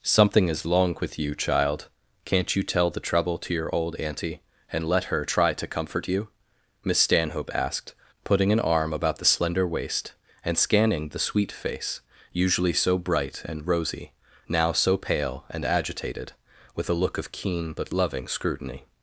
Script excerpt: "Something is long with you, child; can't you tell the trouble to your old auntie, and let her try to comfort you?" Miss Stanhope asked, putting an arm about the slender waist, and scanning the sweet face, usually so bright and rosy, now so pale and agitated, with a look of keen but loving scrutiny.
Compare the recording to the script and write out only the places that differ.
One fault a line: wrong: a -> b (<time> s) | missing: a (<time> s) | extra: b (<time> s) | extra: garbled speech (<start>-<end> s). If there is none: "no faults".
no faults